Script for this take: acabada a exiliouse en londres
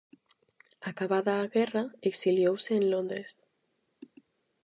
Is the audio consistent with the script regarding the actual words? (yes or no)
no